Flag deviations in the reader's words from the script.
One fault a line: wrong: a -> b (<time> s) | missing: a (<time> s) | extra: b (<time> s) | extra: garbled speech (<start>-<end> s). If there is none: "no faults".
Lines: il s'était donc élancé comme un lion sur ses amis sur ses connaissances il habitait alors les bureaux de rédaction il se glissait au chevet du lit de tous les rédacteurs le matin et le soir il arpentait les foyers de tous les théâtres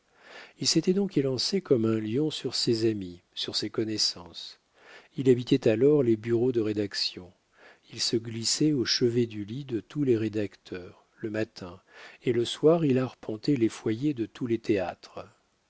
no faults